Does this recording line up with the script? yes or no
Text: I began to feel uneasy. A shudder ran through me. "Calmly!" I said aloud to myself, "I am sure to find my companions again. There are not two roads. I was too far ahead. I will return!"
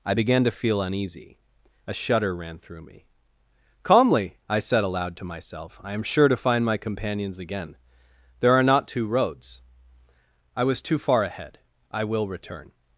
yes